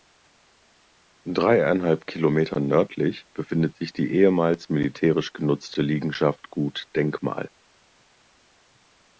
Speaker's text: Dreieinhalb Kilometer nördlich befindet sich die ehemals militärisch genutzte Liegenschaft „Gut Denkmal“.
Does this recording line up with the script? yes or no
yes